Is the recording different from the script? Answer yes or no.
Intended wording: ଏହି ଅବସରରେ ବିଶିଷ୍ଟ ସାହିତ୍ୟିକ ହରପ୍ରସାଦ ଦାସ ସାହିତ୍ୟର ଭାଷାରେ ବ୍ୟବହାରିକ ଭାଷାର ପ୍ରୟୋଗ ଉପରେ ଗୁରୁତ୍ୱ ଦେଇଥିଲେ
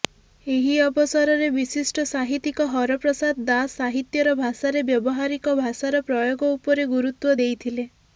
no